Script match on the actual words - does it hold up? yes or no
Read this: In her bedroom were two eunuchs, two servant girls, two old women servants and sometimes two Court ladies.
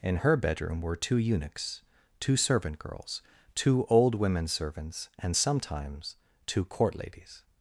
yes